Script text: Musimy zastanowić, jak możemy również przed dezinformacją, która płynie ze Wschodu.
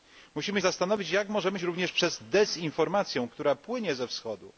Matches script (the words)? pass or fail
pass